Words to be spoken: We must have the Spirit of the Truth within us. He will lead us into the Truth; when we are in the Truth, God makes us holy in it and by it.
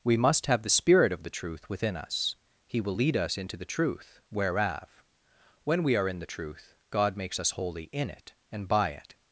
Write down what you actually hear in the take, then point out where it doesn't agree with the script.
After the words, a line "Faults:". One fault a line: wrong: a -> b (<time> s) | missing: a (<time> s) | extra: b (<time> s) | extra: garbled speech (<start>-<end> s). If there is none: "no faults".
We must have the Spirit of the Truth within us. He will lead us into the Truth; whereof when we are in the Truth, God makes us holy in it and by it.
Faults:
extra: whereof (4.3 s)